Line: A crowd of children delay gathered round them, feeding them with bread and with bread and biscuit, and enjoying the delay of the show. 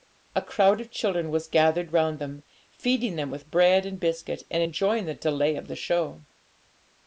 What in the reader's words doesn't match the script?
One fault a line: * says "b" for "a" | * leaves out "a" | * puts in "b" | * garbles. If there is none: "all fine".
* says "was" for "delay"
* leaves out "with bread and"